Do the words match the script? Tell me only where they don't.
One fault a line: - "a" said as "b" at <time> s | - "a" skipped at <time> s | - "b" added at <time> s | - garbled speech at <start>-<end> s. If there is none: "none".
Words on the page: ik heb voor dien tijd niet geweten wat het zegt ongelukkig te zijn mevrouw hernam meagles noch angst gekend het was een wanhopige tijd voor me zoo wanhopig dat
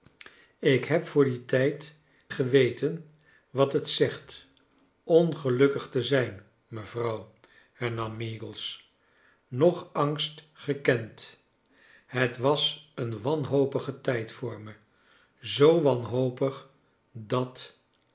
- "niet" skipped at 1.9 s